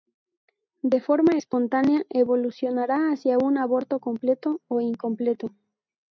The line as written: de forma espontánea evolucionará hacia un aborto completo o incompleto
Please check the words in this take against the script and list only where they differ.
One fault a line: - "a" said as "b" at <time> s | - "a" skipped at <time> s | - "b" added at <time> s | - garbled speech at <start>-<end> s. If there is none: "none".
none